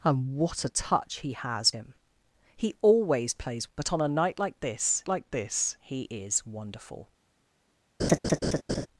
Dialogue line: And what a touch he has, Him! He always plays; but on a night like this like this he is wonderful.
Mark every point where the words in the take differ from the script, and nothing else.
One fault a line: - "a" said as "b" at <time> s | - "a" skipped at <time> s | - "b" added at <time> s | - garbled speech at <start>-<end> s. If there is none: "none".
none